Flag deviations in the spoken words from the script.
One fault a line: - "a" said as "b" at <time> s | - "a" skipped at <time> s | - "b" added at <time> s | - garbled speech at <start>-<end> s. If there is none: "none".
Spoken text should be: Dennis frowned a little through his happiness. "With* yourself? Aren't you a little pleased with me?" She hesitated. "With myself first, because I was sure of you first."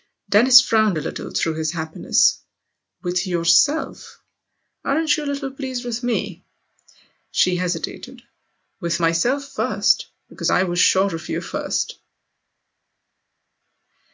none